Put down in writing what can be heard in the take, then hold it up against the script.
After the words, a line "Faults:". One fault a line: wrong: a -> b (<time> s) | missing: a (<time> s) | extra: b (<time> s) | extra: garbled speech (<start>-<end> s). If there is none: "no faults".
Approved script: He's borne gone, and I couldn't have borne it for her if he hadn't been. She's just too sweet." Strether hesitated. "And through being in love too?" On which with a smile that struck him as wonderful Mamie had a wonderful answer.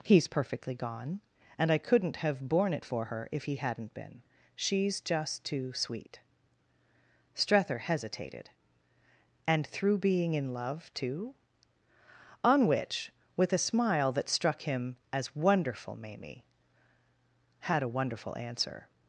He's perfectly gone, and I couldn't have borne it for her if he hadn't been. She's just too sweet." Strether hesitated. "And through being in love too?" On which with a smile that struck him as wonderful Mamie had a wonderful answer.
Faults:
wrong: borne -> perfectly (0.3 s)